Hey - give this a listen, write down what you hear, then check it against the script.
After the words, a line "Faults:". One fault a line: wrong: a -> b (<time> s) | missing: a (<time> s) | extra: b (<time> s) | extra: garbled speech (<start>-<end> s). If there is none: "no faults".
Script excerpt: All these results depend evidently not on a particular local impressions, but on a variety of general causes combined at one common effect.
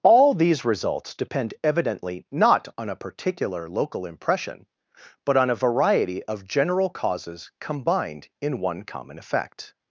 All these results depend evidently not on a particular local impression, but on a variety of general causes combined in one common effect.
Faults:
wrong: impressions -> impression (4.1 s)
wrong: at -> in (8.4 s)